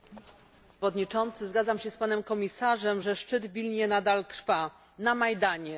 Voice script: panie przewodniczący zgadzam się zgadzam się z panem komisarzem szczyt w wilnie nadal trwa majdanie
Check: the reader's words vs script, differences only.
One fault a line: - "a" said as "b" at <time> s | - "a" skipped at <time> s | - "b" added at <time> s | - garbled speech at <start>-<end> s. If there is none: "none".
- "zgadzam się" skipped at 1.9 s
- "że" added at 3.0 s
- "na" added at 5.0 s